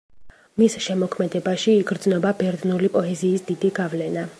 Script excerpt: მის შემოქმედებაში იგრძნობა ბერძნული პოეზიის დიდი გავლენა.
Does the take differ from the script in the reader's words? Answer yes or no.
no